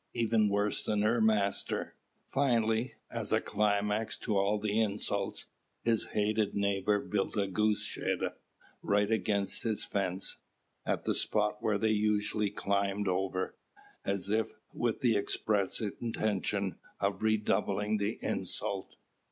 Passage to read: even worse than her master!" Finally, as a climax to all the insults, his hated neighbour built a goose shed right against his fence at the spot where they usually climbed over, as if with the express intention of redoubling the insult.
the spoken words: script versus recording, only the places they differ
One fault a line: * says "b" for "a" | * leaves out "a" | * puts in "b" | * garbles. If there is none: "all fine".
all fine